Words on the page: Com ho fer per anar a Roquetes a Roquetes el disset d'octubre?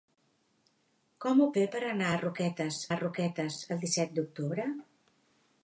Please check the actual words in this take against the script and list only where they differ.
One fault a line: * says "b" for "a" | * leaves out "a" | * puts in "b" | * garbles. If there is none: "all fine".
all fine